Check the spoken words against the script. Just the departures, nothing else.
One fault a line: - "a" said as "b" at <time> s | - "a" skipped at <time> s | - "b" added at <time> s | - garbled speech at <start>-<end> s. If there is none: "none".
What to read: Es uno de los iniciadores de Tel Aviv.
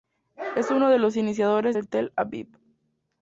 none